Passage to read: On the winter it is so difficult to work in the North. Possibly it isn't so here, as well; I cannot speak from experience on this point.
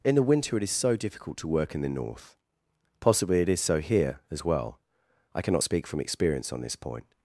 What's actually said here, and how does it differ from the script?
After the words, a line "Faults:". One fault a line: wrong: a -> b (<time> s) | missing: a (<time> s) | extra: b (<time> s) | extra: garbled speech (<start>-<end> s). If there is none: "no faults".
In the winter it is so difficult to work in the North. Possibly it is so here, as well; I cannot speak from experience on this point.
Faults:
wrong: On -> In (0.0 s)
wrong: isn't -> is (3.5 s)